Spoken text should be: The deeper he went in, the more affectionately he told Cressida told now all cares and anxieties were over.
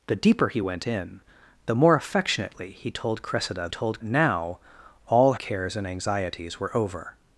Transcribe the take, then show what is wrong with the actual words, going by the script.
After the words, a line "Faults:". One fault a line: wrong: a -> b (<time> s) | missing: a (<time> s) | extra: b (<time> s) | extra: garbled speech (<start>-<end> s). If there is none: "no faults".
The deeper he went in, the more affectionately he told Cressida told now all cares and anxieties were over.
Faults:
no faults